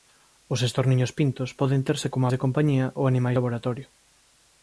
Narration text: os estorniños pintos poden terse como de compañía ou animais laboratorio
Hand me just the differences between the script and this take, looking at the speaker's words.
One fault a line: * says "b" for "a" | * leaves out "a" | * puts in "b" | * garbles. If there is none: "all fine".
all fine